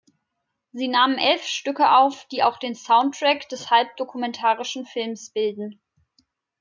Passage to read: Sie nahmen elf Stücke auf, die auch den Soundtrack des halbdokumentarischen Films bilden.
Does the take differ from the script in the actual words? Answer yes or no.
no